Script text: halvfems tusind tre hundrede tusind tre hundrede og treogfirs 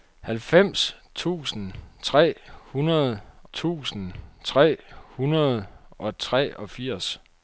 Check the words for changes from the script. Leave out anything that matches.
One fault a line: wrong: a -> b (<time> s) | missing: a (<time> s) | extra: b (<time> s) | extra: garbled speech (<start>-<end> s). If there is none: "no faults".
no faults